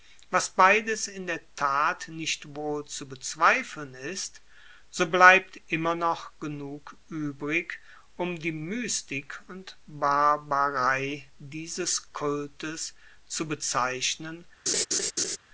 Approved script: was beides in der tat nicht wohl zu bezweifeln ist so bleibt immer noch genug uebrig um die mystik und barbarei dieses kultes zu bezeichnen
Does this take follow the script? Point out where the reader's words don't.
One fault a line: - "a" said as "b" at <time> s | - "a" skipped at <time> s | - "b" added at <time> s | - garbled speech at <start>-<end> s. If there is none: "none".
none